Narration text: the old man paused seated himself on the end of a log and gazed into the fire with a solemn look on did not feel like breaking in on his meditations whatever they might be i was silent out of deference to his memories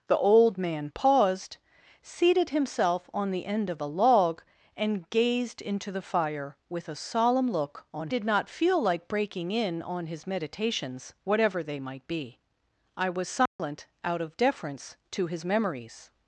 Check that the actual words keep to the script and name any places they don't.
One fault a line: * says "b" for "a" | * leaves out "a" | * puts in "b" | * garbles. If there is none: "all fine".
all fine